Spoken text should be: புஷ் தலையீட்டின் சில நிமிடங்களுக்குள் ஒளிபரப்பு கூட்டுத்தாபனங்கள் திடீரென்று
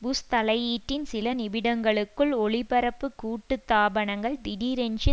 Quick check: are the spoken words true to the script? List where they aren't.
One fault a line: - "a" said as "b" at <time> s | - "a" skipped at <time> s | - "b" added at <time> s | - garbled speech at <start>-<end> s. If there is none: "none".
none